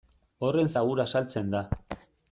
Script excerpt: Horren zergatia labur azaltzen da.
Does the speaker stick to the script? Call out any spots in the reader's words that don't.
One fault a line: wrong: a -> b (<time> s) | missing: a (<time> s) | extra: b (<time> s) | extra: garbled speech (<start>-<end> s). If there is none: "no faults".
missing: zergatia (0.7 s)